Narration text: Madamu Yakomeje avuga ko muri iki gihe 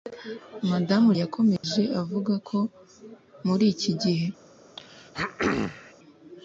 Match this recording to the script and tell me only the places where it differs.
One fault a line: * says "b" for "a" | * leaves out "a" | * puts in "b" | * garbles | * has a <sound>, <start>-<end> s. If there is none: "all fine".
* has a dropout, 1.6-1.6 s
* has a throat clearing, 4.8-5.9 s